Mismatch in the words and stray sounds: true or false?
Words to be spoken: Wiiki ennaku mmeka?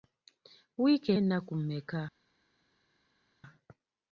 false